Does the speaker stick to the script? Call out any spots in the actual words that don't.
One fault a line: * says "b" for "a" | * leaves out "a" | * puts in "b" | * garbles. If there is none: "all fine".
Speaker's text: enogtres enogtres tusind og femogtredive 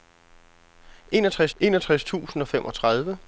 all fine